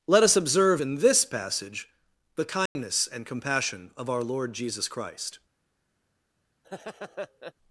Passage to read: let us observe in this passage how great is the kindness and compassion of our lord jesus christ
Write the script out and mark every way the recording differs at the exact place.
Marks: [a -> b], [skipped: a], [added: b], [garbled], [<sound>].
let us observe in this passage [skipped: how great is] the kindness [dropout] and compassion of our lord jesus christ [laugh]